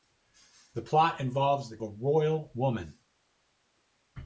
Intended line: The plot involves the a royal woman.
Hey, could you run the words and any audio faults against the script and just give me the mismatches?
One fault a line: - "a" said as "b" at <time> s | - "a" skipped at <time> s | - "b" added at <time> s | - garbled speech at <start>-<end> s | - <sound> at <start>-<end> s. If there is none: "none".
none